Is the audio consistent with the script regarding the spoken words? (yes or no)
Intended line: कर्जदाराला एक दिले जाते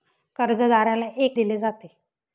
yes